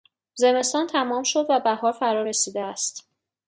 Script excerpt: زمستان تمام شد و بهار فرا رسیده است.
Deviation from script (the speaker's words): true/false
false